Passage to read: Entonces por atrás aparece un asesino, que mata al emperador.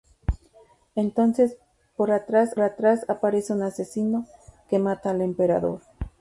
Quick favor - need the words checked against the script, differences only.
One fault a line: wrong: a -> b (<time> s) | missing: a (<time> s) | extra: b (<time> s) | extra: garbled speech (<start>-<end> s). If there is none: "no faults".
extra: atrás (2.6 s)